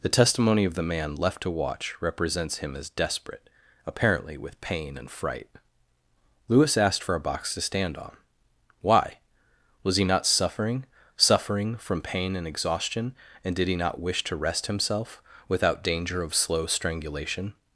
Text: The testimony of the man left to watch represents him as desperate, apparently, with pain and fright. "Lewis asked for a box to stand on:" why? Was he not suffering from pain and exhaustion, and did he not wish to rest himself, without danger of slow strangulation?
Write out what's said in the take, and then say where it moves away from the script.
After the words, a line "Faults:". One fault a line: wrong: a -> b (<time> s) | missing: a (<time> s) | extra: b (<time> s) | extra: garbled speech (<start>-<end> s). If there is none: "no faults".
The testimony of the man left to watch represents him as desperate, apparently, with pain and fright. "Lewis asked for a box to stand on:" why? Was he not suffering suffering from pain and exhaustion, and did he not wish to rest himself, without danger of slow strangulation?
Faults:
extra: suffering (11.2 s)